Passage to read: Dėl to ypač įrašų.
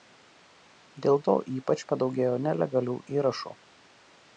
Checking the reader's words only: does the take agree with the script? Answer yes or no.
no